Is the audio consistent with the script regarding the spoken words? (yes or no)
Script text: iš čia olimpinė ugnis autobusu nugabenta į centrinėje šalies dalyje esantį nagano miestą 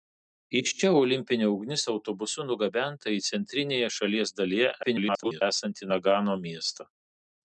no